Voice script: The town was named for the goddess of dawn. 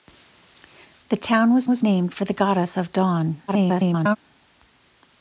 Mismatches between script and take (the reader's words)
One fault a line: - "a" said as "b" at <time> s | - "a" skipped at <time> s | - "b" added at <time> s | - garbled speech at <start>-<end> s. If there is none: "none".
- "was" added at 1.7 s
- garbled speech at 3.5-4.2 s